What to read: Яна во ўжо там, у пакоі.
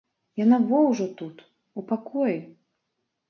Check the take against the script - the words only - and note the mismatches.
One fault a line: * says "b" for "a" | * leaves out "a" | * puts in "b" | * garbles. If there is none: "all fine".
* says "тут" for "там"